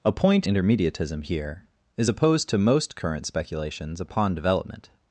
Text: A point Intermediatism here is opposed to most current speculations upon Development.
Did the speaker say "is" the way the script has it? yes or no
yes